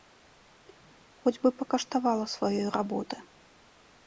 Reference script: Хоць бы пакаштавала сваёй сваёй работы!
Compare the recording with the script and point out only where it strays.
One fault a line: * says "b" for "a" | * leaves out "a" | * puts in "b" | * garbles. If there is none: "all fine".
* leaves out "сваёй"